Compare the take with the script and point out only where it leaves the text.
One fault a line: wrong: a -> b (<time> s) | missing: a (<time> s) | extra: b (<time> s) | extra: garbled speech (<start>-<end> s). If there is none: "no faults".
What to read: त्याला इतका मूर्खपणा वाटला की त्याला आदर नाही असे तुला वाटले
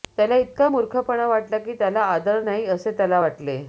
wrong: तुला -> त्याला (2.9 s)